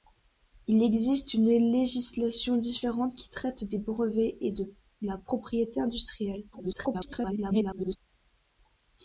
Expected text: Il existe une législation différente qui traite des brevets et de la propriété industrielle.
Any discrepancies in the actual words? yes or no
yes